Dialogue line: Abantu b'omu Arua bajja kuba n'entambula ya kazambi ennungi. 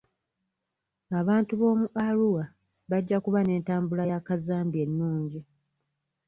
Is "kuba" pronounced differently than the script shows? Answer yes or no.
no